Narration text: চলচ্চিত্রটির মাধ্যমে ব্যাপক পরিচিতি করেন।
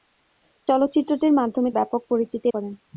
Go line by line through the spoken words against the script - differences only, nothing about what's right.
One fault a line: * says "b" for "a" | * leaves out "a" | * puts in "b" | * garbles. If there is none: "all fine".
all fine